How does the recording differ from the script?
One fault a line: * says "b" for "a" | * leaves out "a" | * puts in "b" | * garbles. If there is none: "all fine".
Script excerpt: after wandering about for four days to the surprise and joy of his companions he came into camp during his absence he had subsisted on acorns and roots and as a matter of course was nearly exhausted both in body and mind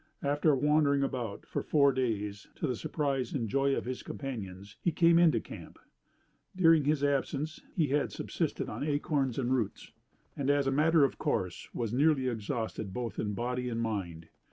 all fine